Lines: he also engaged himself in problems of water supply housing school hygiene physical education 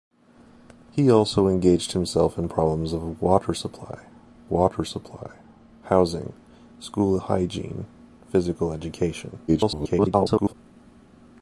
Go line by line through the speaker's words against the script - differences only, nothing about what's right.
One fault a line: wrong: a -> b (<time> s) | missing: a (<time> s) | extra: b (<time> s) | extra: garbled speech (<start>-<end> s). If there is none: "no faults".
extra: water supply (4.5 s)
extra: garbled speech (9.5-10.5 s)